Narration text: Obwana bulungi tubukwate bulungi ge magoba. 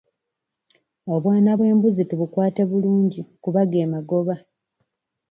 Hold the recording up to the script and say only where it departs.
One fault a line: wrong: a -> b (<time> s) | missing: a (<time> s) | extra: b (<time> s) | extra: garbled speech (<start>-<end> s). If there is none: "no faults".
wrong: bulungi -> bw'embuzi (1.6 s)
extra: kuba (3.4 s)